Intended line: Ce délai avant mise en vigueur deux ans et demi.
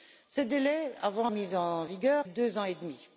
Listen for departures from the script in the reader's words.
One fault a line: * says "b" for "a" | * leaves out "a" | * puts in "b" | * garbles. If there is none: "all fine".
all fine